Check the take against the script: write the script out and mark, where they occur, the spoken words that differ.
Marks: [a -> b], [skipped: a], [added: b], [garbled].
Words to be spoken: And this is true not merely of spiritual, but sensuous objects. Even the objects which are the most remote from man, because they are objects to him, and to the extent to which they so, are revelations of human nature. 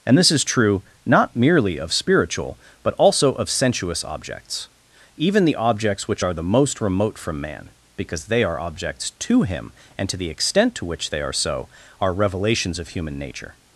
And this is true not merely of spiritual, but [added: also of] sensuous objects. Even the objects which are the most remote from man, because they are objects to him, and to the extent to which they [added: are] so, are revelations of human nature.